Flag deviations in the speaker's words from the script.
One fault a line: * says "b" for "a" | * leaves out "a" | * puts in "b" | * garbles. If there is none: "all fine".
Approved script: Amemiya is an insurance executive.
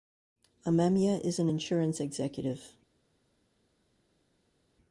all fine